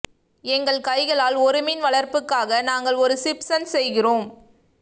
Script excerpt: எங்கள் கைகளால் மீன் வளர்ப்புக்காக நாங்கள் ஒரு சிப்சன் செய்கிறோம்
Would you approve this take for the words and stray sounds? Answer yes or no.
no